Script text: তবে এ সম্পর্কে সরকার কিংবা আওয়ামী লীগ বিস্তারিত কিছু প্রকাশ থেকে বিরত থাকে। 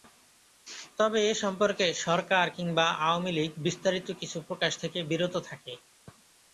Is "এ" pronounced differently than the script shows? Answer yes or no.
no